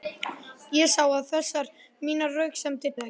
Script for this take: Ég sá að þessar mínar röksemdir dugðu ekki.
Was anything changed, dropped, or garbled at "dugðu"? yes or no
yes